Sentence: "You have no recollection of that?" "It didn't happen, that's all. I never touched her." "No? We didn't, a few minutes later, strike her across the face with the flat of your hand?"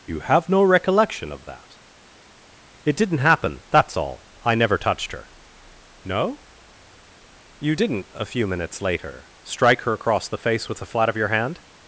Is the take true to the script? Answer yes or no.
no